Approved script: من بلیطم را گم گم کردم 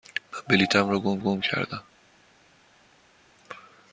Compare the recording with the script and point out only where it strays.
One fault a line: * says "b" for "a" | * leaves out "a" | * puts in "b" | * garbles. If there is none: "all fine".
all fine